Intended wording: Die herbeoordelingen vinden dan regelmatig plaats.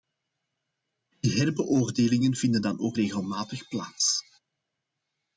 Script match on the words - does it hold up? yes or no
no